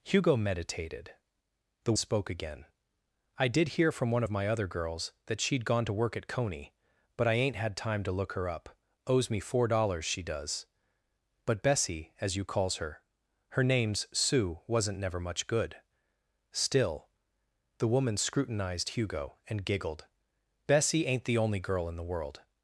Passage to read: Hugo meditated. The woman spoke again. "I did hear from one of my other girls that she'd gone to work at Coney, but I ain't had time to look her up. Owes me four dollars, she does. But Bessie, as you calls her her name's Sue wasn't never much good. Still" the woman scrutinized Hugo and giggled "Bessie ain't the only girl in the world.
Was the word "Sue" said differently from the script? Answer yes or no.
no